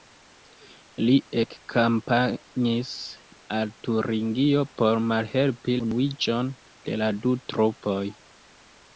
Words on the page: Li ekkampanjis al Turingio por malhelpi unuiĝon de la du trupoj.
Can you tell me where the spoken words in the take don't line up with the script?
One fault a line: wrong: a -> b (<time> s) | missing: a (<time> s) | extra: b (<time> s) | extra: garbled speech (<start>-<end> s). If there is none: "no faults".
no faults